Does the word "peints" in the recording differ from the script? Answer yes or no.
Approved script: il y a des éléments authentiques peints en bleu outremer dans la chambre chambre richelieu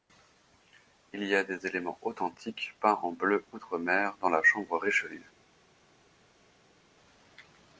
no